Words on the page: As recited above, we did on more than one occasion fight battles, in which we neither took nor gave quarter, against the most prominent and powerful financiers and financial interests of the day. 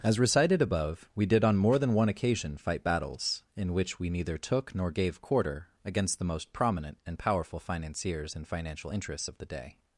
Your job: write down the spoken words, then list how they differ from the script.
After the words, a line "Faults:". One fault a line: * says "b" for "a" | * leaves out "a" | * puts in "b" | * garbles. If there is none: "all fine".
As recited above, we did on more than one occasion fight battles, in which we neither took nor gave quarter, against the most prominent and powerful financiers and financial interests of the day.
Faults:
all fine